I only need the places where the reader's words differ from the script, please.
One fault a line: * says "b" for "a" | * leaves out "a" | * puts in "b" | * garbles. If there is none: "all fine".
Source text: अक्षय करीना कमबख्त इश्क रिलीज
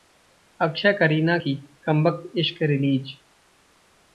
* puts in "की"